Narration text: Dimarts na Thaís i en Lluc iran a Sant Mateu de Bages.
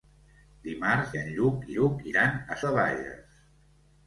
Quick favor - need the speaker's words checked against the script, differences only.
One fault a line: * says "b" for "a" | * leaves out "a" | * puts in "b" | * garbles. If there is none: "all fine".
* leaves out "na Thaís"
* puts in "Lluc"
* leaves out "Sant Mateu"